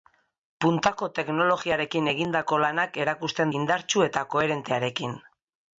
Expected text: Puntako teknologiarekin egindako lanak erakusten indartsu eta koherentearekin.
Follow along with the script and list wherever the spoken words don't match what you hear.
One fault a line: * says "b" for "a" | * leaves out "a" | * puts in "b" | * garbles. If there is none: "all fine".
all fine